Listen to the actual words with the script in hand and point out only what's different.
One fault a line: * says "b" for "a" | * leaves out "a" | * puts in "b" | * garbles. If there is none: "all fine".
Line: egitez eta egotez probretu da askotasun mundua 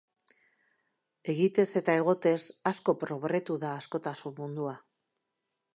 * puts in "asko"